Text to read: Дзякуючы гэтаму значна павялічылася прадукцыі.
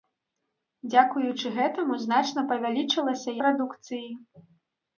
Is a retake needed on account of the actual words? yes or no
no